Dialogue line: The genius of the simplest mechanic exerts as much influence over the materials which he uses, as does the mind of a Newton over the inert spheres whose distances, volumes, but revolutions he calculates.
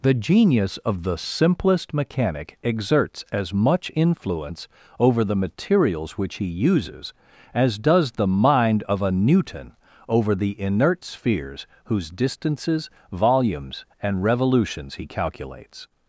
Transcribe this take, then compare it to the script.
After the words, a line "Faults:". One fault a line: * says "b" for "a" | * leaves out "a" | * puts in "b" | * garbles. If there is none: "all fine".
The genius of the simplest mechanic exerts as much influence over the materials which he uses, as does the mind of a Newton over the inert spheres whose distances, volumes, and revolutions he calculates.
Faults:
* says "and" for "but"